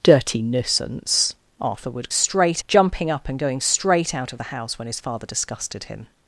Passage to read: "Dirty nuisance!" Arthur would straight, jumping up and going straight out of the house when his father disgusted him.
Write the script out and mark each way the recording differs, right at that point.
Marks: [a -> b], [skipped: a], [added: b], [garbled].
"Dirty nuisance!" Arthur would straight, jumping up and going straight out of the house when his father disgusted him.